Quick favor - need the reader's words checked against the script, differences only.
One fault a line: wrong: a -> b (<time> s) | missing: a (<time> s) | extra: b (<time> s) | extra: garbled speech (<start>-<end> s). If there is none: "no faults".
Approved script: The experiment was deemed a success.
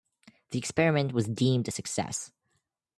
no faults